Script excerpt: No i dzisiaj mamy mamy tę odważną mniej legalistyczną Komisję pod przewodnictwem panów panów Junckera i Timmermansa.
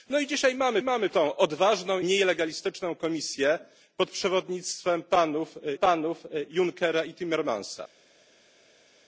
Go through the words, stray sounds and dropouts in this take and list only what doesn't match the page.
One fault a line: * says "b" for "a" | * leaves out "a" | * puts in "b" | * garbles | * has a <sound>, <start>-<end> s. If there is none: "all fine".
all fine